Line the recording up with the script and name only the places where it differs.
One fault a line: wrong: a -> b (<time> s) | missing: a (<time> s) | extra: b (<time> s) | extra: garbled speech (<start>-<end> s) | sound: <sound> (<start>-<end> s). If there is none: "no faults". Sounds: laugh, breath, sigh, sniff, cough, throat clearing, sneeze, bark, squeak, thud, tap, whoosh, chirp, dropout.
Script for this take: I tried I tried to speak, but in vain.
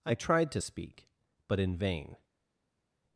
missing: I tried (0.5 s)